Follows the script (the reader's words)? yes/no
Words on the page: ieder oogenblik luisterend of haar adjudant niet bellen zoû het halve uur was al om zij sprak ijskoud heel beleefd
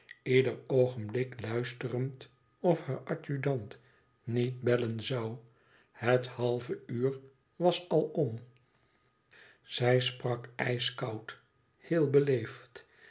yes